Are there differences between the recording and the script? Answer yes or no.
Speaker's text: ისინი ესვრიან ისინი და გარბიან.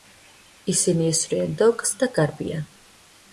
yes